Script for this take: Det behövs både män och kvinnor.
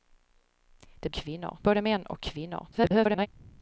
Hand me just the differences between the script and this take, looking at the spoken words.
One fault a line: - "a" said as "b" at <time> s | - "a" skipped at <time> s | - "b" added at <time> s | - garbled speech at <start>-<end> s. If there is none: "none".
- "behövs" said as "kvinnor" at 1.1 s
- garbled speech at 2.7-3.3 s